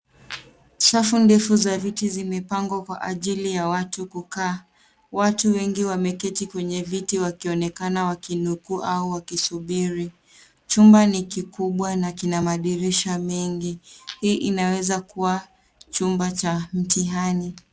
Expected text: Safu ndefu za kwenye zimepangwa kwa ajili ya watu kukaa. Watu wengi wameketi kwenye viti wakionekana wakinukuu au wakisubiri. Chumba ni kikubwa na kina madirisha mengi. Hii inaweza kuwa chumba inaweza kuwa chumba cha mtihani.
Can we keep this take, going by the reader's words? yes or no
no